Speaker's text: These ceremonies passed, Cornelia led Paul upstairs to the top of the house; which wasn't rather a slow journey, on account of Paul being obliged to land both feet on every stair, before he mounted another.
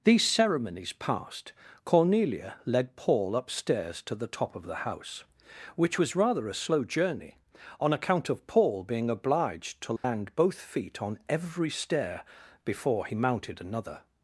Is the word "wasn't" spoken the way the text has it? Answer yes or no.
no